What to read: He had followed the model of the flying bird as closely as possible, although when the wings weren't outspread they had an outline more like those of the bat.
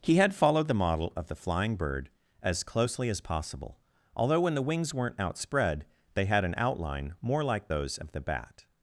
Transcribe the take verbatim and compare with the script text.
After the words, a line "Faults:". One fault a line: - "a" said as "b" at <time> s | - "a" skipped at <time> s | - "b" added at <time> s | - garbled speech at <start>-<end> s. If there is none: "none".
He had followed the model of the flying bird as closely as possible, although when the wings weren't outspread they had an outline more like those of the bat.
Faults:
none